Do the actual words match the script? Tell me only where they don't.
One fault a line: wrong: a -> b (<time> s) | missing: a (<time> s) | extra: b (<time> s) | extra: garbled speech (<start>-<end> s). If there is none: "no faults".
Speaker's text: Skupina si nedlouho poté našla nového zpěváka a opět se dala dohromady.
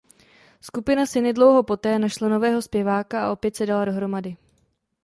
no faults